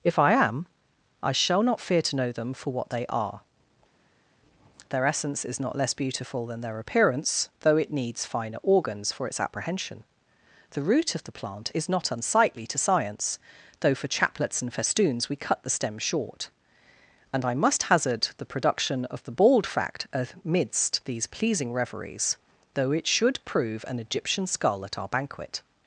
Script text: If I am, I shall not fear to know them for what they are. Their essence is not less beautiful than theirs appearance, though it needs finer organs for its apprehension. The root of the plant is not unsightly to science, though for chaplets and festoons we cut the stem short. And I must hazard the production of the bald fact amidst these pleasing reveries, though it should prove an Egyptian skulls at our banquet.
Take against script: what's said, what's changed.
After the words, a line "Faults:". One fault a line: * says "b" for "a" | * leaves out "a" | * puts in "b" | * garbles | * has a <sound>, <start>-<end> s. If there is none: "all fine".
If I am, I shall not fear to know them for what they are. Their essence is not less beautiful than their appearance, though it needs finer organs for its apprehension. The root of the plant is not unsightly to science, though for chaplets and festoons we cut the stem short. And I must hazard the production of the bald fact amidst these pleasing reveries, though it should prove an Egyptian skull at our banquet.
Faults:
* says "their" for "theirs"
* says "skull" for "skulls"